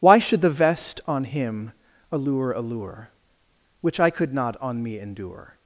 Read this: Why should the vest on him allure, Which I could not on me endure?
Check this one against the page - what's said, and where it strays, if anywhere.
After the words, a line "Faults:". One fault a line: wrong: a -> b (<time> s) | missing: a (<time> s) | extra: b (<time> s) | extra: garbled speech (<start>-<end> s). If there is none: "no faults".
Why should the vest on him allure allure, Which I could not on me endure?
Faults:
extra: allure (2.5 s)